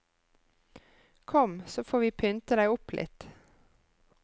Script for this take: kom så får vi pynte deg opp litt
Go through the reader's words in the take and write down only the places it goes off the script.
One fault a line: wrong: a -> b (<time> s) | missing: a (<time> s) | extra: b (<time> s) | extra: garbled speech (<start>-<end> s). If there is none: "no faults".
no faults